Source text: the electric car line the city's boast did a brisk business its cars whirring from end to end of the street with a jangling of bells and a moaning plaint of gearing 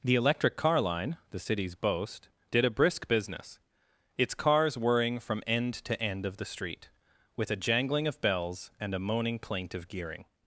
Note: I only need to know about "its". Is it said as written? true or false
true